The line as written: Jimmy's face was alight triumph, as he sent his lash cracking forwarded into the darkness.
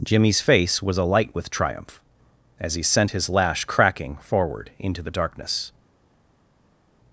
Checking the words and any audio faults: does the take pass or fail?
fail